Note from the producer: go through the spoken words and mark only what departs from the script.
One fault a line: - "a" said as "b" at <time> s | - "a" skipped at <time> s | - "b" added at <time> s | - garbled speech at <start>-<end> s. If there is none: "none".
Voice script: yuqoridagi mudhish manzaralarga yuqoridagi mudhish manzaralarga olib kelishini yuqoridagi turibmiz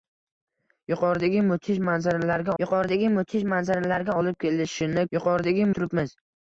none